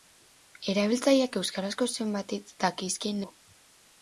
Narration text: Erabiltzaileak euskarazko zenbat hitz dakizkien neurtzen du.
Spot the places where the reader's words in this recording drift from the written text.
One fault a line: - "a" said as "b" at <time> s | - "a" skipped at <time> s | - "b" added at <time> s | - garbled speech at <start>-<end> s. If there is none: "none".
- "neurtzen" skipped at 3.2 s